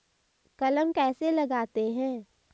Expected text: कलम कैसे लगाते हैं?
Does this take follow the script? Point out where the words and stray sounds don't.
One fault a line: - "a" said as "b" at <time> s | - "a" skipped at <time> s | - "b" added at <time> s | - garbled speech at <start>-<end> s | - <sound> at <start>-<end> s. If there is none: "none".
none